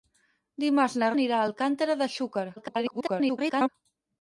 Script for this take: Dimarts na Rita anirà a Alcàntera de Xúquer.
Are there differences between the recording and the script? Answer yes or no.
yes